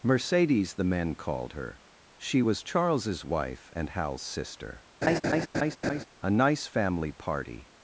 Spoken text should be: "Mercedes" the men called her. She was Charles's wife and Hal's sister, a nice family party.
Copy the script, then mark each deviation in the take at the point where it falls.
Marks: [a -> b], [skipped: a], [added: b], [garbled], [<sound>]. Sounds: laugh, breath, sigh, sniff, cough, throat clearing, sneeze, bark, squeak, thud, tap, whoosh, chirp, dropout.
"Mercedes" the men called her. She was Charles's wife and Hal's sister, [laugh] a nice family party.